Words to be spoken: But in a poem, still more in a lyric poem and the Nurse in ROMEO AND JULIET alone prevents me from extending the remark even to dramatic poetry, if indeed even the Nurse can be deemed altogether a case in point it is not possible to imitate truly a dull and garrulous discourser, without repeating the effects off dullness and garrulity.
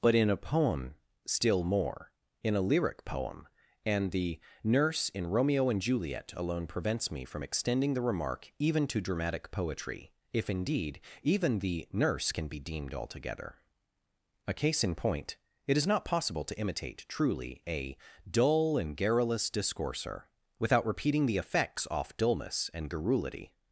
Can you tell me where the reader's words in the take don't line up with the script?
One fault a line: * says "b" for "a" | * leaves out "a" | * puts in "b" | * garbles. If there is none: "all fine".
all fine